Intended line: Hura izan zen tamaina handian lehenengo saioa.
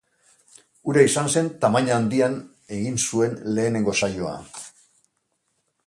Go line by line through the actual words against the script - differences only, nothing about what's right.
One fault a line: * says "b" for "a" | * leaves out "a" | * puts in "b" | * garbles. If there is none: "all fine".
* puts in "egin zuen"